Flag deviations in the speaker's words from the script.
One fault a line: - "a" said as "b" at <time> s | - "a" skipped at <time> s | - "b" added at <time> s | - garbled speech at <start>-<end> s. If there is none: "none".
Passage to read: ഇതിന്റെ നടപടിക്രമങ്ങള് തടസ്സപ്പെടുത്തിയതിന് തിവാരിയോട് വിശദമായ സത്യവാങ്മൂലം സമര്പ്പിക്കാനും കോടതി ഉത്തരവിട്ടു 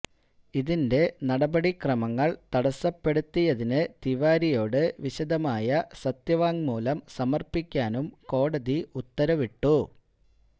none